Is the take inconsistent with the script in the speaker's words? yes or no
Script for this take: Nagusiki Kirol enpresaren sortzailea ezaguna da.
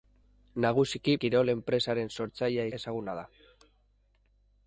no